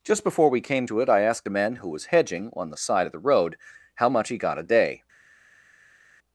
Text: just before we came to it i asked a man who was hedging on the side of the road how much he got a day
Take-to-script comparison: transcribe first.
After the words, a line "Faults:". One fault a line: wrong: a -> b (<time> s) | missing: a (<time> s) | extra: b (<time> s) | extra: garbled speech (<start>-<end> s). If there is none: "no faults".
just before we came to it i asked a man who was hedging on the side of the road how much he got a day
Faults:
no faults